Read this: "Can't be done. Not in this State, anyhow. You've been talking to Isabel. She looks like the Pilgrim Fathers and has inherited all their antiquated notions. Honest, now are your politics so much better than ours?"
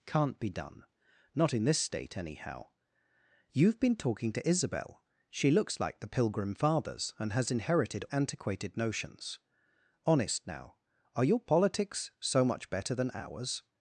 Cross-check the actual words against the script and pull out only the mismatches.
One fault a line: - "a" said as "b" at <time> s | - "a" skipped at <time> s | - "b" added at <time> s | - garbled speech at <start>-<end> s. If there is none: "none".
- "all their" skipped at 8.0 s